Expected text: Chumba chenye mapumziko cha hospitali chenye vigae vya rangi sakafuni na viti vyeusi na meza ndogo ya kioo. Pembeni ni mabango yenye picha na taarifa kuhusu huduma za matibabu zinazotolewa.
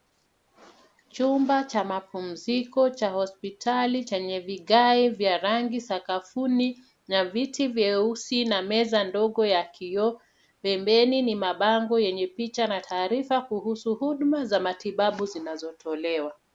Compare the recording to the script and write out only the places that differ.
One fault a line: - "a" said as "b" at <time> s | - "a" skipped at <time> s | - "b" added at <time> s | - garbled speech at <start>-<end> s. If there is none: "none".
- "chenye" said as "cha" at 1.6 s